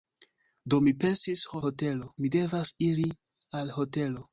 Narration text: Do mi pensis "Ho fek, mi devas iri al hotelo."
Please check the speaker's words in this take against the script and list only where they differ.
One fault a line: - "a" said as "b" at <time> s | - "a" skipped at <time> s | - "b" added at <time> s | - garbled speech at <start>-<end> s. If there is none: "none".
- "fek" said as "hotelo" at 1.7 s